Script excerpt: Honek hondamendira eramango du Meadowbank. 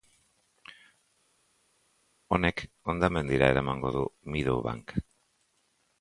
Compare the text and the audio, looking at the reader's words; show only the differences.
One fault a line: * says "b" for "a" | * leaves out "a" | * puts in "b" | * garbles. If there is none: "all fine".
all fine